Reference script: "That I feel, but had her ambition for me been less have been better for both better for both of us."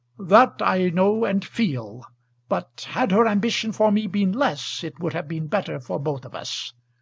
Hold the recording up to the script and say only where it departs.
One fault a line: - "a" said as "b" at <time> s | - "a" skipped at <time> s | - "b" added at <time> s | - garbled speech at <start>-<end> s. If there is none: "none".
- "know and" added at 0.9 s
- "it would" added at 4.8 s
- "better for both" skipped at 6.2 s